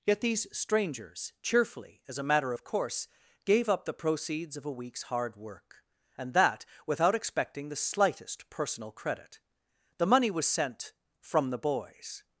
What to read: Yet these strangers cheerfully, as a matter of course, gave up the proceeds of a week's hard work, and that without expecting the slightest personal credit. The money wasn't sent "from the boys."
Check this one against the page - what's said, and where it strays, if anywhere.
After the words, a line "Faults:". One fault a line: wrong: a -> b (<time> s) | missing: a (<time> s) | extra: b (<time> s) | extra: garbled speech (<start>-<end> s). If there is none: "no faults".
Yet these strangers cheerfully, as a matter of course, gave up the proceeds of a week's hard work, and that without expecting the slightest personal credit. The money was sent "from the boys."
Faults:
wrong: wasn't -> was (10.3 s)